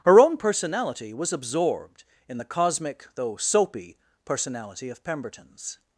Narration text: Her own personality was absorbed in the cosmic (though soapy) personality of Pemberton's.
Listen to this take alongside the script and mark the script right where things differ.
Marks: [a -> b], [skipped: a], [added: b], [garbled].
Her own personality was absorbed in the cosmic (though soapy) personality of Pemberton's.